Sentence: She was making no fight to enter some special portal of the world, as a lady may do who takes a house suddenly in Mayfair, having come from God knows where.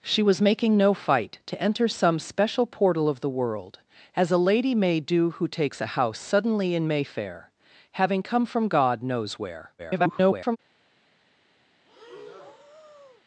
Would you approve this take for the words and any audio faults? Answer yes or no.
no